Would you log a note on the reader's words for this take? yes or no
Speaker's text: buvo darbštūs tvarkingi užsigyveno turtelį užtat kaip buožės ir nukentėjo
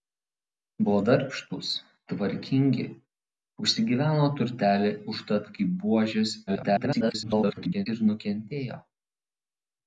yes